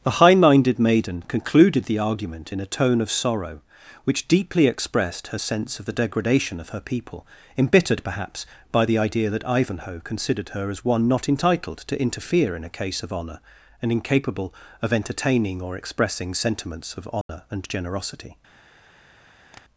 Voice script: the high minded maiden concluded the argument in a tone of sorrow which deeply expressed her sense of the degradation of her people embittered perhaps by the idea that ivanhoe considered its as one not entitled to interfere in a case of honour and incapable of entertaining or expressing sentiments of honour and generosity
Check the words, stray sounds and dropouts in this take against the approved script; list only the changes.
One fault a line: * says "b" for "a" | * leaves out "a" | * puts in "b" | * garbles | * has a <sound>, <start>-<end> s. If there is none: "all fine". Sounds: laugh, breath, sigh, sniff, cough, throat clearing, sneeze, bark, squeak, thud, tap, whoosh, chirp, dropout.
* says "her" for "its"
* has a dropout, 17.2-17.3 s
* has a tap, 19.5-19.6 s